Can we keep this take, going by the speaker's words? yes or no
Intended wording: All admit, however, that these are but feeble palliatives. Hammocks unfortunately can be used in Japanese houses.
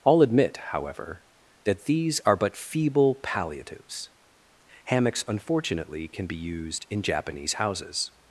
yes